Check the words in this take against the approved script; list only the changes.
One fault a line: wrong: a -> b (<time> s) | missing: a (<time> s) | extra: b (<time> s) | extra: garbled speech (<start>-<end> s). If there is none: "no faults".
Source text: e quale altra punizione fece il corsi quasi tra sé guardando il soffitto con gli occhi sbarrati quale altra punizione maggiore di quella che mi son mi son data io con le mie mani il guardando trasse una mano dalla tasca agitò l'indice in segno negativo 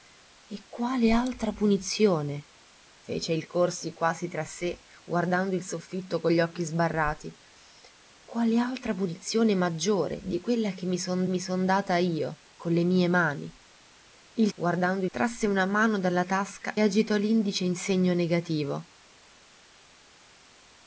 no faults